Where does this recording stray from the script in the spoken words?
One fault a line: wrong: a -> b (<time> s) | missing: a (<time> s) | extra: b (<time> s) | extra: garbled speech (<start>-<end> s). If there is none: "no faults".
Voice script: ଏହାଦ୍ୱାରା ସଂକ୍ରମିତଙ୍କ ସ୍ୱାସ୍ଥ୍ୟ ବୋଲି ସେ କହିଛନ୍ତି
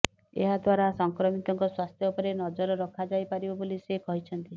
extra: ଉପରେ ନଜର ରଖାଯାଇପାରିବ (2.1 s)